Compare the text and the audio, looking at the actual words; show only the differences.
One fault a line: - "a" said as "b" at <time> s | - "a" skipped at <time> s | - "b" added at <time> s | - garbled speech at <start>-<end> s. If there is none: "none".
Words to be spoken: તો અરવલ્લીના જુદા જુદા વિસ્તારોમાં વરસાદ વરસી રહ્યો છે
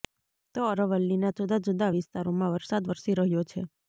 none